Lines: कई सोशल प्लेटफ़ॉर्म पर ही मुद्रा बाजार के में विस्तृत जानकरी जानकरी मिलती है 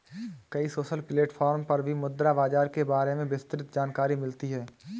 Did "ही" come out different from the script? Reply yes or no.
yes